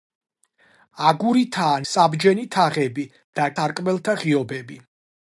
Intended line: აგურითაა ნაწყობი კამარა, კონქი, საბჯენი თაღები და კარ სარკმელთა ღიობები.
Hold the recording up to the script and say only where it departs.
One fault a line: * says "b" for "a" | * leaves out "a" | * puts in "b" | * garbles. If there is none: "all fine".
* leaves out "ნაწყობი კამარა კონქი"
* leaves out "კარ"